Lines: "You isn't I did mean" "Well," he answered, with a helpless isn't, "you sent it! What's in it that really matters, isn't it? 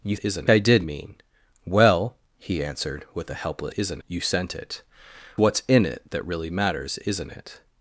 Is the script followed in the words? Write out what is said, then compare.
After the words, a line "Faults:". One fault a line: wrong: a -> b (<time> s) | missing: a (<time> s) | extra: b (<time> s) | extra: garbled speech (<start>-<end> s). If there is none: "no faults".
"You isn't I did mean" "Well," he answered, with a helpless isn't, "you sent it! What's in it that really matters, isn't it?
Faults:
no faults